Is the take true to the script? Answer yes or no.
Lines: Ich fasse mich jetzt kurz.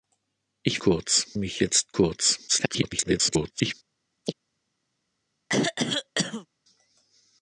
no